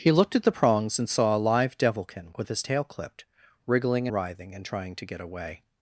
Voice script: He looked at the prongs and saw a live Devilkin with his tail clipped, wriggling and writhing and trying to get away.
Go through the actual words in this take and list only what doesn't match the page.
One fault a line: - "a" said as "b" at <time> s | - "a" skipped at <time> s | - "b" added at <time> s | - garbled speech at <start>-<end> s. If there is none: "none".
- "and" skipped at 4.1 s